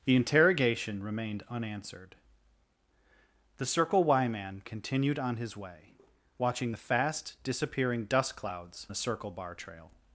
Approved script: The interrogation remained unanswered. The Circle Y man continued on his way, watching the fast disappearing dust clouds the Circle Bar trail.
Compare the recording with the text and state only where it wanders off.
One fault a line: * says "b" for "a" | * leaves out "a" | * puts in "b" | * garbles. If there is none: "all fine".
all fine